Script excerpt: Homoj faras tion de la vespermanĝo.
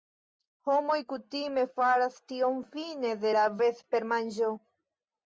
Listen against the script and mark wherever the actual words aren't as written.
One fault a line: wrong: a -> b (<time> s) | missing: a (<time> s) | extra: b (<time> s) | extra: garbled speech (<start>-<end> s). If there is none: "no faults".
extra: kutime (1.1 s)
extra: fine (2.7 s)